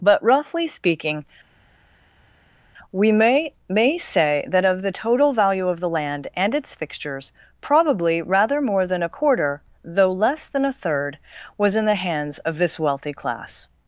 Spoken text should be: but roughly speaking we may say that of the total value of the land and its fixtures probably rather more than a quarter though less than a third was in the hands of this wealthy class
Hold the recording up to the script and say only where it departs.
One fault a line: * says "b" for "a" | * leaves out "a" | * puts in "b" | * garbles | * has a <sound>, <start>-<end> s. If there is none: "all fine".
* puts in "may"